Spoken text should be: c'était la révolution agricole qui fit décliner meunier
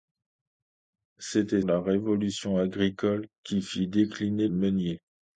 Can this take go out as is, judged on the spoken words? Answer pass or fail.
pass